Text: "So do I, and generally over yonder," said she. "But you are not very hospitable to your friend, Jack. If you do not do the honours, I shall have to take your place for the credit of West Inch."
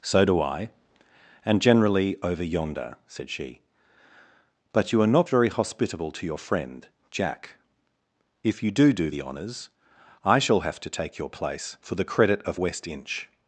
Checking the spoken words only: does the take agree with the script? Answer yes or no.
no